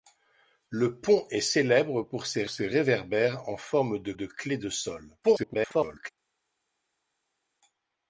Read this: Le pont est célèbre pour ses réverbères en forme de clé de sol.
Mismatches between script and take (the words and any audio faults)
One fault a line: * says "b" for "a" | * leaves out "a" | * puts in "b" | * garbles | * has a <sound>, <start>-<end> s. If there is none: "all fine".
* puts in "ses"
* puts in "de"
* garbles